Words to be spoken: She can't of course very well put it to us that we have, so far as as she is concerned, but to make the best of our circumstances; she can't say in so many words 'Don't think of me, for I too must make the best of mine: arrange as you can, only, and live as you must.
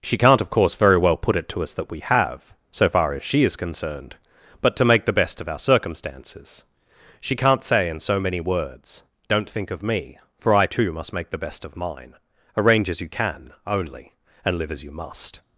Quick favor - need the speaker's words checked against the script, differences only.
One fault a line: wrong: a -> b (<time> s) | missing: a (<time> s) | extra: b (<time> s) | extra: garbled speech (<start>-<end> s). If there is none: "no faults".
missing: as (3.2 s)